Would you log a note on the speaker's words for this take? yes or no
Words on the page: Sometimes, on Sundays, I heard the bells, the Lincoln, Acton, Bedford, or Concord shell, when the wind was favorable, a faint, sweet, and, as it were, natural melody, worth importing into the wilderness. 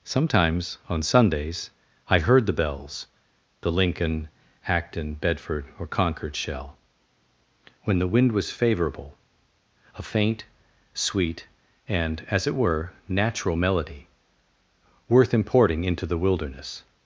no